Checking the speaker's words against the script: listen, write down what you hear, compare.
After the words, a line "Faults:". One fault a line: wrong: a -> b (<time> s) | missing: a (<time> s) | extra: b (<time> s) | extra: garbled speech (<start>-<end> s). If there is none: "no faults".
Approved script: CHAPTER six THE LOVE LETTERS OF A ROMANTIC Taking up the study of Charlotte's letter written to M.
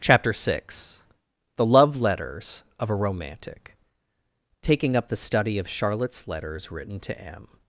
CHAPTER six THE LOVE LETTERS OF A ROMANTIC Taking up the study of Charlotte's letters written to M.
Faults:
wrong: letter -> letters (6.3 s)